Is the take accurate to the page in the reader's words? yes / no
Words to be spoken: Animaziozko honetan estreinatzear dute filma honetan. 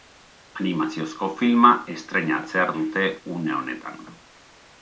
no